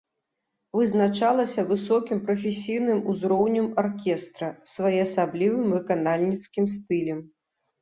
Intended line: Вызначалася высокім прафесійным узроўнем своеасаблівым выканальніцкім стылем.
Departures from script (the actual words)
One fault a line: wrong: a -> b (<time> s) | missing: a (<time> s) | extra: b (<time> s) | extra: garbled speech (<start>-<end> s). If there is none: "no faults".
extra: аркестра (3.8 s)